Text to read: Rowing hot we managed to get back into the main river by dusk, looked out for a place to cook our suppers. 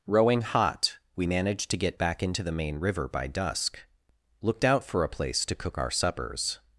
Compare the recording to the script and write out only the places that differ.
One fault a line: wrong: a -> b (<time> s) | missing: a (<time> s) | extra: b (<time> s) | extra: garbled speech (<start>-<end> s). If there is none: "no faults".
no faults